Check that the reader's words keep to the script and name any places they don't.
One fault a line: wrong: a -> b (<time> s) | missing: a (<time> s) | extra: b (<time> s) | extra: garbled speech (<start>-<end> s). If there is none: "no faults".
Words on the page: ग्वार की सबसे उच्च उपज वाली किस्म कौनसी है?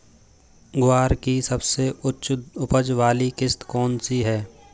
no faults